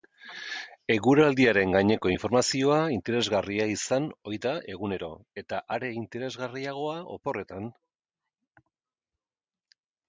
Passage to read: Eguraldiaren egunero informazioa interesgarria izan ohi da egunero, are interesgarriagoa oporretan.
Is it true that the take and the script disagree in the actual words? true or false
true